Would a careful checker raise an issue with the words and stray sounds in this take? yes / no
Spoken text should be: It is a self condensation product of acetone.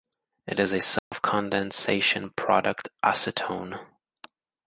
yes